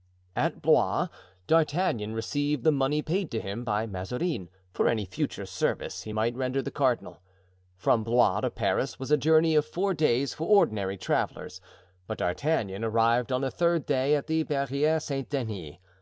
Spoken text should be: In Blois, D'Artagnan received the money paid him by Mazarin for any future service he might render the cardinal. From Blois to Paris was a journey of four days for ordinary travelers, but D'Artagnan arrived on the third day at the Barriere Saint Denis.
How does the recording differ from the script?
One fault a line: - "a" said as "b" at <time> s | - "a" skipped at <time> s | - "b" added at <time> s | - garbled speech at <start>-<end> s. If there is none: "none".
- "In" said as "At" at 0.3 s
- "to" added at 3.3 s